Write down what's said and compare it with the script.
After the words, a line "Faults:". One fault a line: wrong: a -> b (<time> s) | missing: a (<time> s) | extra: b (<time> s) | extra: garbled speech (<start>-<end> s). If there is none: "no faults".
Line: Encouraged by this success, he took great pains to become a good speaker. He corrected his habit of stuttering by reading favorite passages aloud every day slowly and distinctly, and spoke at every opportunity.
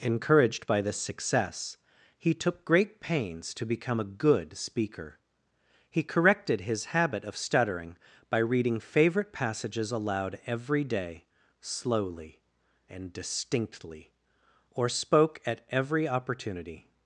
Encouraged by this success, he took great pains to become a good speaker. He corrected his habit of stuttering by reading favorite passages aloud every day slowly and distinctly, or spoke at every opportunity.
Faults:
wrong: and -> or (14.7 s)